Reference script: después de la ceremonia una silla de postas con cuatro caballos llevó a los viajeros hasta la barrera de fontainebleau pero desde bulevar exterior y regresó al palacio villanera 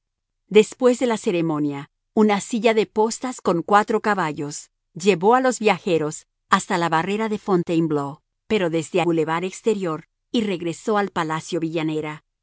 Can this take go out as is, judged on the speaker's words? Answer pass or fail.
pass